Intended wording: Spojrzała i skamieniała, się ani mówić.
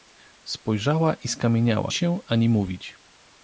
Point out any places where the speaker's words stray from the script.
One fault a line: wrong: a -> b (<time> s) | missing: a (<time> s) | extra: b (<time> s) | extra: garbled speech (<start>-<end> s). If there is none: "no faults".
no faults